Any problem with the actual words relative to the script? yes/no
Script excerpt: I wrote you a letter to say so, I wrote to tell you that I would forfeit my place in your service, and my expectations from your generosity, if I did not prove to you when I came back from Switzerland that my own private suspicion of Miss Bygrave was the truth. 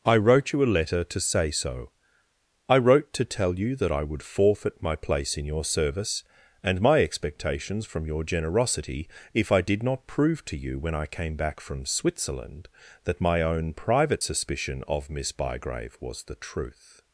no